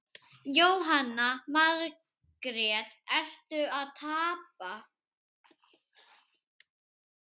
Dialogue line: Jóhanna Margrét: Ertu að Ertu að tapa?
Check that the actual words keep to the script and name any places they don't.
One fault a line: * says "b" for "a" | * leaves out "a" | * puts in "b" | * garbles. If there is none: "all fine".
* leaves out "Ertu að"